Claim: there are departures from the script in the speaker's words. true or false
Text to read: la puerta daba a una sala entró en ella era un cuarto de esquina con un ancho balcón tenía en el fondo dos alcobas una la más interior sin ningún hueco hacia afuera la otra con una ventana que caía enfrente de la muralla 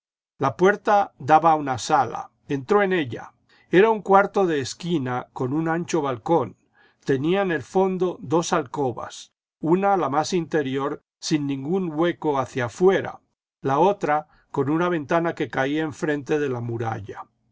false